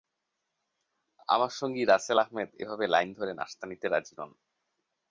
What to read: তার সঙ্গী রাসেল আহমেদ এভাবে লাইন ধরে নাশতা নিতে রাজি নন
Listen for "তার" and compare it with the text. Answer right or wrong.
wrong